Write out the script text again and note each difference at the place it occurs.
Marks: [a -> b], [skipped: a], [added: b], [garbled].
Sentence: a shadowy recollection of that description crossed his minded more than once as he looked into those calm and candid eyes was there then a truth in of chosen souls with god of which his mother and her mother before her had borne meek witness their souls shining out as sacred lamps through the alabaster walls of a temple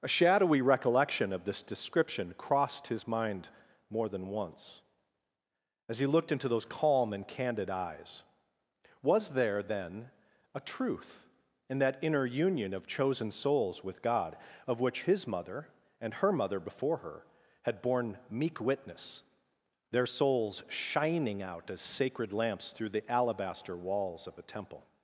a shadowy recollection of [that -> this] description crossed his [minded -> mind] more than once as he looked into those calm and candid eyes was there then a truth in [added: that inner union] of chosen souls with god of which his mother and her mother before her had borne meek witness their souls shining out as sacred lamps through the alabaster walls of a temple